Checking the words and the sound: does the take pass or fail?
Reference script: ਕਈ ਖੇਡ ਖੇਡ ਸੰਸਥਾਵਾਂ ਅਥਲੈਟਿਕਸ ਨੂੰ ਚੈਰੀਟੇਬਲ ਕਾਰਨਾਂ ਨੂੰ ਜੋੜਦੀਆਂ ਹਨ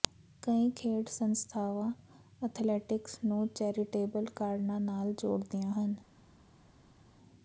fail